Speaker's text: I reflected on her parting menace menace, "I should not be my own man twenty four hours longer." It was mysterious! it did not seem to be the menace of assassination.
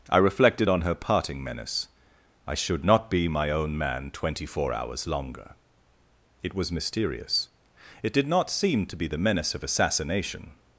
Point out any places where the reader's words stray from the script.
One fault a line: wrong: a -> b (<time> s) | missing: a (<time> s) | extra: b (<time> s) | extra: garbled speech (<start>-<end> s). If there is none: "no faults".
missing: menace (1.9 s)